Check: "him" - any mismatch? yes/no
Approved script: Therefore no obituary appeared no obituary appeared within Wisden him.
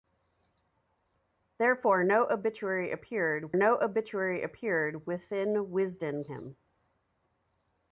no